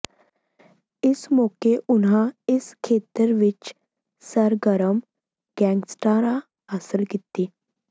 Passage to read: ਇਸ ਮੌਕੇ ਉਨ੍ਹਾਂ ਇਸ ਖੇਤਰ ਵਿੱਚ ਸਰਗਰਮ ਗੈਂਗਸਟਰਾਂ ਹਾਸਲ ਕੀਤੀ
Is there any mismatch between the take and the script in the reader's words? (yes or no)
no